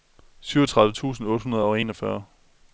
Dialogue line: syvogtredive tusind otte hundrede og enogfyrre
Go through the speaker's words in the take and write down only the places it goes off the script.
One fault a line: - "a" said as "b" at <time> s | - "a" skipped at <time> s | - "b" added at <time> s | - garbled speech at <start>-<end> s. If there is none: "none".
none